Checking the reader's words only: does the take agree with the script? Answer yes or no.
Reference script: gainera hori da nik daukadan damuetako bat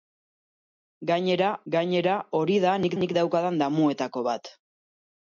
no